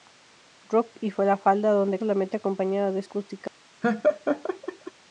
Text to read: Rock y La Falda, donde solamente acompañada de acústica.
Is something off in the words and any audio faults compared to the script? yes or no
yes